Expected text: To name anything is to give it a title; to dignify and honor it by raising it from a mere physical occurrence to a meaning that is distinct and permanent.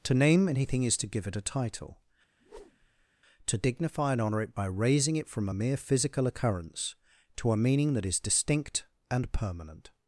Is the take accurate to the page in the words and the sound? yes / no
no